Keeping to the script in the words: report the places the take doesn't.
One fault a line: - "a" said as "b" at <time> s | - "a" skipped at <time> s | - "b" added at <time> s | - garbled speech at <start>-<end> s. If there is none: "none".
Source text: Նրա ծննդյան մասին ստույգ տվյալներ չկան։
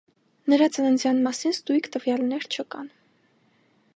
none